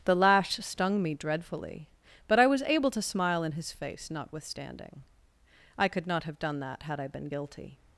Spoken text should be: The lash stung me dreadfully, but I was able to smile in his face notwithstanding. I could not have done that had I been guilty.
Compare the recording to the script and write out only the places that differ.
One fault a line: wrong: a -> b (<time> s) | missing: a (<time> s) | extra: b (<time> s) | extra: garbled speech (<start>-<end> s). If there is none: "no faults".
no faults